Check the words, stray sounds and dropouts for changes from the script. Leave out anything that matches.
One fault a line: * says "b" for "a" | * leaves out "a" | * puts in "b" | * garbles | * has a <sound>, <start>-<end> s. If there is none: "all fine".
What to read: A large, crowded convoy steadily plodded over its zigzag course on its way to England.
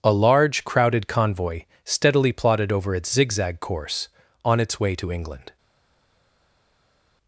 all fine